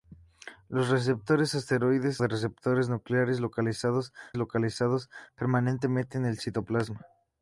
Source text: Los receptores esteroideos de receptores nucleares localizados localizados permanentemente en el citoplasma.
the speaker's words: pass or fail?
pass